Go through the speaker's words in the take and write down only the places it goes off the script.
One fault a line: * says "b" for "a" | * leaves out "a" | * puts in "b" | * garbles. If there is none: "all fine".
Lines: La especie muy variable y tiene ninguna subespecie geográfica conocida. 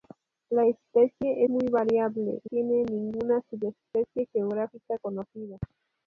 all fine